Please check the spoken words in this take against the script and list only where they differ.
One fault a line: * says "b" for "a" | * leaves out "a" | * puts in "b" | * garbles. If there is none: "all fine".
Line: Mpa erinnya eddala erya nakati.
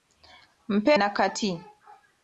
* leaves out "erinnya eddala erya"